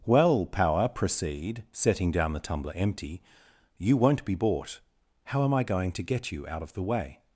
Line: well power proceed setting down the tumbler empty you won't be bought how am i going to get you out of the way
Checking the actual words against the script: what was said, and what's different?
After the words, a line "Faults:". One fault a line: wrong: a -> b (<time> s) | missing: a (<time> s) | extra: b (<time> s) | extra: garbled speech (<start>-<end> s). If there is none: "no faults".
well power proceed setting down the tumbler empty you won't be bought how am i going to get you out of the way
Faults:
no faults